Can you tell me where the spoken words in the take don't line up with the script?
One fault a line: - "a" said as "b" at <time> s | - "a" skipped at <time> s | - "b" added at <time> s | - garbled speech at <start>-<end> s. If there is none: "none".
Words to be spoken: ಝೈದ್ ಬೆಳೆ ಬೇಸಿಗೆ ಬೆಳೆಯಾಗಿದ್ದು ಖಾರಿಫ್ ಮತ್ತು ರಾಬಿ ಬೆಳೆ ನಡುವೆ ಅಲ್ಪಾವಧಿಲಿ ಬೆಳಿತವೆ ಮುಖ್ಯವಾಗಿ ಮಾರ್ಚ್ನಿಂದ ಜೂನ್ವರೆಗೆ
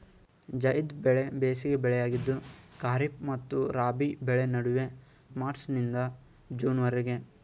- "ಅಲ್ಪಾವಧಿಲಿ ಬೆಳಿತವೆ ಮುಖ್ಯವಾಗಿ" skipped at 4.8 s